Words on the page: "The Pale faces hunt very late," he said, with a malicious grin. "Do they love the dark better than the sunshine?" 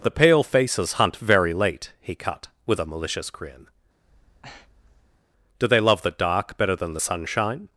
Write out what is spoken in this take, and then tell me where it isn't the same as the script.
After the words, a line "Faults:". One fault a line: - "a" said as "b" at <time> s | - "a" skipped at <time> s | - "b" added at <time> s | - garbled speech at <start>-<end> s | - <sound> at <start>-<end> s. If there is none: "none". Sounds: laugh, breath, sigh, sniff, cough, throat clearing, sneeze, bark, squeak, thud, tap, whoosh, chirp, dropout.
"The Pale faces hunt very late," he cut, with a malicious grin. "Do they love the dark better than the sunshine?"
Faults:
- "said" said as "cut" at 2.1 s
- breath at 4.0-5.2 s